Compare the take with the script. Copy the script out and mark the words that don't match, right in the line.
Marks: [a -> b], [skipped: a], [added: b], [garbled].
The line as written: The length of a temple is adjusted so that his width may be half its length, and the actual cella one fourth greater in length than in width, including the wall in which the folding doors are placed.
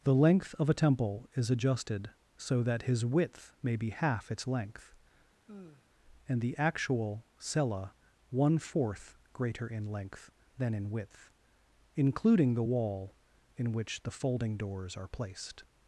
The length of a temple is adjusted so that his width may be half its length, and the actual cella one fourth greater in length than in width, including the wall in which the folding doors are placed.